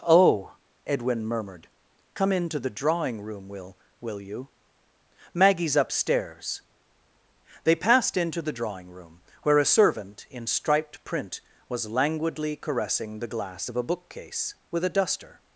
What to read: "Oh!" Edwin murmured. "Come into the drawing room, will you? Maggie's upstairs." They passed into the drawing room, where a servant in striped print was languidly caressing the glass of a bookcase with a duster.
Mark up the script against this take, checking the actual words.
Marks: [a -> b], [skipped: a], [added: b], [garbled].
"Oh!" Edwin murmured. "Come into the drawing room, will [added: will] you? Maggie's upstairs." They passed into the drawing room, where a servant in striped print was languidly caressing the glass of a bookcase with a duster.